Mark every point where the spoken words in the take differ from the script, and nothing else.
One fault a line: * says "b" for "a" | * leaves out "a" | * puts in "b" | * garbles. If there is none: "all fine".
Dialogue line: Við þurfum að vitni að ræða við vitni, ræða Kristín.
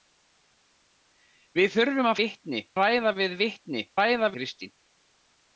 all fine